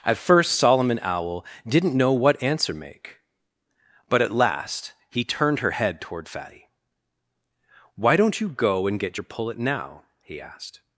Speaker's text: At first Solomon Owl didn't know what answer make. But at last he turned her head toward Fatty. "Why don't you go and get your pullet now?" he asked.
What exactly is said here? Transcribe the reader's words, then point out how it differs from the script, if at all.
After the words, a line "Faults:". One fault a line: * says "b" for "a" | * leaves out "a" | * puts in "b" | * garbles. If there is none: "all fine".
At first Solomon Owl didn't know what answer make. But at last he turned her head toward Fatty. "Why don't you go and get your pullet now?" he asked.
Faults:
all fine